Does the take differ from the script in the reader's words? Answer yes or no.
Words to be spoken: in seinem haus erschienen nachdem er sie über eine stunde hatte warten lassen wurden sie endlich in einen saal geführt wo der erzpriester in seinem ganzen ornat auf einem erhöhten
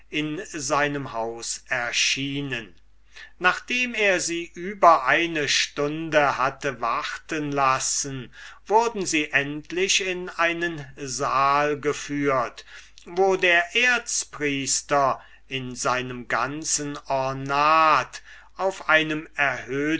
no